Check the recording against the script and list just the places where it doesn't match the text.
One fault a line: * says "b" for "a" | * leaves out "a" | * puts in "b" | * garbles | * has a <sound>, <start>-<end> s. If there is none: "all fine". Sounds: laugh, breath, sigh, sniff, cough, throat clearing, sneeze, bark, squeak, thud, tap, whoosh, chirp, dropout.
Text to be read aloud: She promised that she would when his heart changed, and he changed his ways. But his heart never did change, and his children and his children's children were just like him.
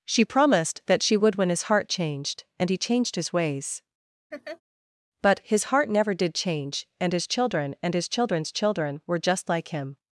* has a laugh, 4.3-4.6 s